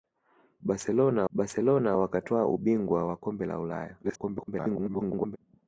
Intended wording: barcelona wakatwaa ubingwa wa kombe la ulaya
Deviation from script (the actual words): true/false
true